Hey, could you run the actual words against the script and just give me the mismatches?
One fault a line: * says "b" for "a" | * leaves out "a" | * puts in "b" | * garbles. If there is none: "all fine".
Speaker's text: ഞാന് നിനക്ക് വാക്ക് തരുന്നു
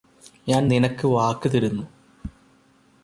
all fine